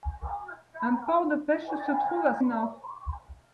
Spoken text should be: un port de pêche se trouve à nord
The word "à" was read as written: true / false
true